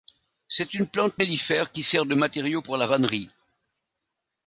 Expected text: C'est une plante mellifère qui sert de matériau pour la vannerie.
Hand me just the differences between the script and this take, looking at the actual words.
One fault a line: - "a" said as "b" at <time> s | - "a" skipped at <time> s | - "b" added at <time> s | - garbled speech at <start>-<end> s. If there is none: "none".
none